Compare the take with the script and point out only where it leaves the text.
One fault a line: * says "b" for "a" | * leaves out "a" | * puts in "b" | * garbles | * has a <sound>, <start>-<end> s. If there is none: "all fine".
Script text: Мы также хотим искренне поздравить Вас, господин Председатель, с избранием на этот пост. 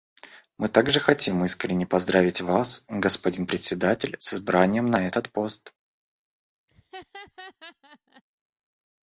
* has a laugh, 6.7-8.2 s